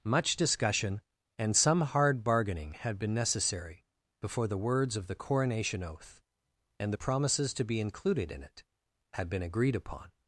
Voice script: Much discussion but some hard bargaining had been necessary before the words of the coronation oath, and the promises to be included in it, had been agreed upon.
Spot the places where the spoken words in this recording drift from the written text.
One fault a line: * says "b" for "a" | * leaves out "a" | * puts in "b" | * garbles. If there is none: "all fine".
* says "and" for "but"